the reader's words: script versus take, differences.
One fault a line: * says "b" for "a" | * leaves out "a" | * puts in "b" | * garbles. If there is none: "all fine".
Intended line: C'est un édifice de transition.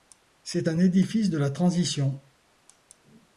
* puts in "la"